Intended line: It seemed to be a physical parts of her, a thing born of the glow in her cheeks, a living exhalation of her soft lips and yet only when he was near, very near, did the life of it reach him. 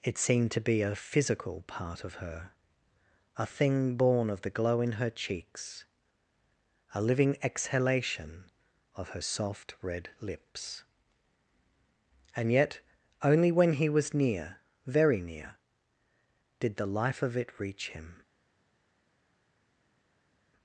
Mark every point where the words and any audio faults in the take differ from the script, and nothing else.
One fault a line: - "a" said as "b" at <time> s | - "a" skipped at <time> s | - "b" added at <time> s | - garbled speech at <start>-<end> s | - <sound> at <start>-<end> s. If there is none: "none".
- "parts" said as "part" at 1.7 s
- "red" added at 9.8 s